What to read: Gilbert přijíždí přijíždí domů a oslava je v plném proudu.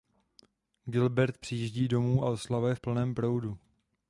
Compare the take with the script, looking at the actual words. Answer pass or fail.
fail